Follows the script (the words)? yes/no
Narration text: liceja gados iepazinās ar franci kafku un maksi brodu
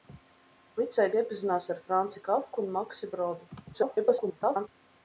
no